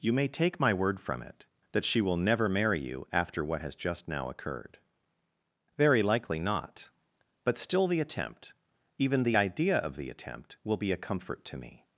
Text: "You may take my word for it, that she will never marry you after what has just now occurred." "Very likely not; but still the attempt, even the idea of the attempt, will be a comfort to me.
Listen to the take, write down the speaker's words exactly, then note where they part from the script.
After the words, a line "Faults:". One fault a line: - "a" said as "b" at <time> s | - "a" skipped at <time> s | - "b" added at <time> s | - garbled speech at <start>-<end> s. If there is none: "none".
"You may take my word from it, that she will never marry you after what has just now occurred." "Very likely not; but still the attempt, even the idea of the attempt, will be a comfort to me.
Faults:
- "for" said as "from" at 1.0 s